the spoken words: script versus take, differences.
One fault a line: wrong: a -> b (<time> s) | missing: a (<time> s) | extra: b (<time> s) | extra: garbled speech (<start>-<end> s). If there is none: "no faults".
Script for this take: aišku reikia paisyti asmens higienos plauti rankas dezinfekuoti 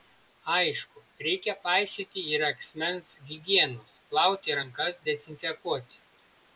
extra: ir (2.3 s)